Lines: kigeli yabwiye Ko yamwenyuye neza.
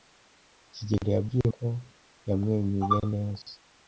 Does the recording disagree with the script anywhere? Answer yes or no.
no